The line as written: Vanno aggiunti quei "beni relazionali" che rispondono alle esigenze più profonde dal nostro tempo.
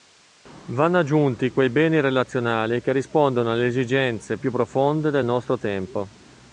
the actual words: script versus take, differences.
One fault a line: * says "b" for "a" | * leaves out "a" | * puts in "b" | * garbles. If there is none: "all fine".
* says "del" for "dal"